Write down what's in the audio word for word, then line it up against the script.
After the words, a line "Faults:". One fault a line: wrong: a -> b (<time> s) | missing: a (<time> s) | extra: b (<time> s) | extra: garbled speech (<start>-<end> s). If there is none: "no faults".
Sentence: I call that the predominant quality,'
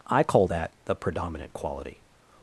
I call that the predominant quality,'
Faults:
no faults